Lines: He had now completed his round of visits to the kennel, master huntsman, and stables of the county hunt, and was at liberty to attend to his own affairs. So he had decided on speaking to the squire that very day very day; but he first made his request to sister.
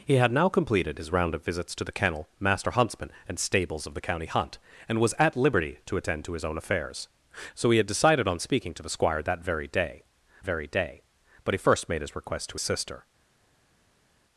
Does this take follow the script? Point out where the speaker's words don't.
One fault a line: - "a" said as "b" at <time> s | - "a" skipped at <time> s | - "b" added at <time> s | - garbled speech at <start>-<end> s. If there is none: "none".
none